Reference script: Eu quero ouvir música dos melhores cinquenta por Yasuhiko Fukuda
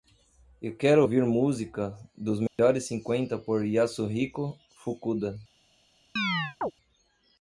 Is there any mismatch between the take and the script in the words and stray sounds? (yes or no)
yes